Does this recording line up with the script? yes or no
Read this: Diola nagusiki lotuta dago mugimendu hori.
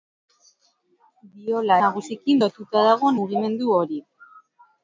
yes